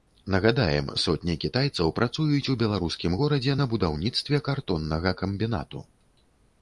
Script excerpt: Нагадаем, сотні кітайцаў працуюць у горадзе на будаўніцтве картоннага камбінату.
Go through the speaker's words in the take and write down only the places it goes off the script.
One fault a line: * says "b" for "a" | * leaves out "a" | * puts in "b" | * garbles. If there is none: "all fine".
* puts in "беларускім"